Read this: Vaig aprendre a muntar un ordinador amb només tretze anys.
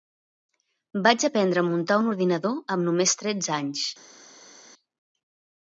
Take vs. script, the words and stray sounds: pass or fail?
pass